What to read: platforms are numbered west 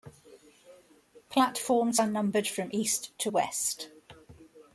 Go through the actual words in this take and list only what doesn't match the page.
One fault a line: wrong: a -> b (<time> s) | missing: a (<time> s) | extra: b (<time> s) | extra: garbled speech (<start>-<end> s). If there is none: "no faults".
extra: from east to (2.5 s)